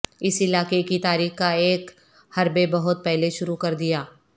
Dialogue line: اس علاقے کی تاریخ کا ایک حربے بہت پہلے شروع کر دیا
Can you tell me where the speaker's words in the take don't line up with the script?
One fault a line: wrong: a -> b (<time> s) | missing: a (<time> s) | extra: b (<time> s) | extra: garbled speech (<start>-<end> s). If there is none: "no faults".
no faults